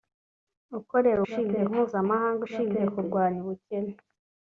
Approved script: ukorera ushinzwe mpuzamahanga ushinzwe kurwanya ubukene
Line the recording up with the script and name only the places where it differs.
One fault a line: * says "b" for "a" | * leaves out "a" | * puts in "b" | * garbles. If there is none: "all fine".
all fine